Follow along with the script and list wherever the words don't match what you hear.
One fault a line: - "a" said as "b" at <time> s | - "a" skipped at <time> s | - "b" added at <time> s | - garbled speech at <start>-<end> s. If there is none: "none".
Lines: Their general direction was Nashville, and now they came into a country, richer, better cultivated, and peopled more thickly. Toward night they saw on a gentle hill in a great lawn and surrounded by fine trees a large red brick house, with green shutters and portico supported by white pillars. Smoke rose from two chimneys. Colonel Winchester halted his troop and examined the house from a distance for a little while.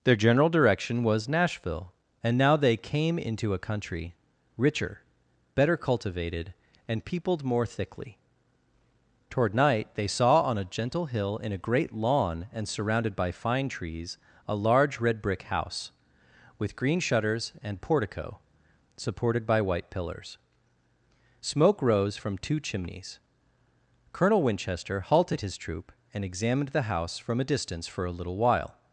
none